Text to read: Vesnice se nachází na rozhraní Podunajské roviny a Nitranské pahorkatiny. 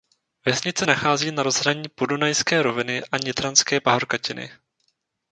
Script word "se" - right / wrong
wrong